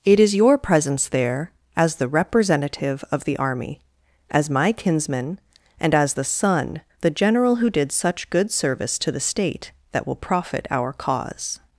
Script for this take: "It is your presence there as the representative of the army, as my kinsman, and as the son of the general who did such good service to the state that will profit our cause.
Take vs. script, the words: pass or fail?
fail